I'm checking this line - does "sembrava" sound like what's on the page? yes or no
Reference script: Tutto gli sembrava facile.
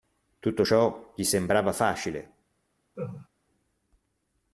yes